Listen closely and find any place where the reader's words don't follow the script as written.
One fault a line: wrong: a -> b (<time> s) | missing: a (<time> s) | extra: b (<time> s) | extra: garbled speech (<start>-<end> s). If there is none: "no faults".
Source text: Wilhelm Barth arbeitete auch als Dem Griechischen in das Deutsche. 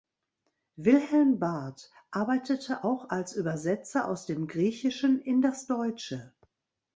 extra: Übersetzer aus (3.3 s)